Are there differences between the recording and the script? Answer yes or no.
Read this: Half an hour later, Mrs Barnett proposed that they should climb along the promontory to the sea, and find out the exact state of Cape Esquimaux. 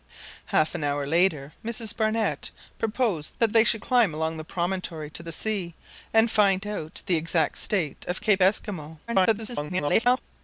yes